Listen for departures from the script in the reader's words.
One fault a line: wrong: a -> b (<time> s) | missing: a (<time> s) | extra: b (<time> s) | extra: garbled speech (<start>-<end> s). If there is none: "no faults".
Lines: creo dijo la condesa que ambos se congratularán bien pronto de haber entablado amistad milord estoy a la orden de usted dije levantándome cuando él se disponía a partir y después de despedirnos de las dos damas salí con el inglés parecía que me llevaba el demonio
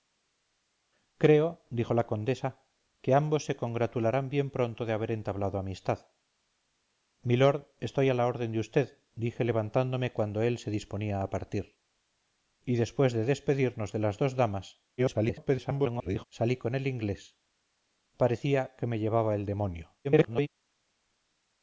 extra: garbled speech (15.0-16.3 s)
extra: garbled speech (20.0-20.5 s)